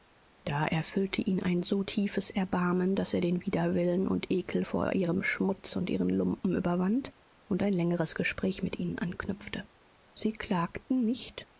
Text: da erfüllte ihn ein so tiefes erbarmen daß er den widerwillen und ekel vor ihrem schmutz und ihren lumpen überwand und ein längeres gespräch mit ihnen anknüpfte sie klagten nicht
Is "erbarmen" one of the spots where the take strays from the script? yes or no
no